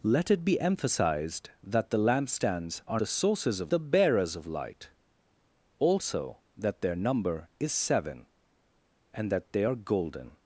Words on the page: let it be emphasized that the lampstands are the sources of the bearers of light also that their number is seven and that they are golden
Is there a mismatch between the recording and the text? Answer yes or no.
no